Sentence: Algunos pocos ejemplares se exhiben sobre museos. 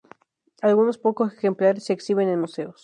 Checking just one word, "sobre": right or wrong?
wrong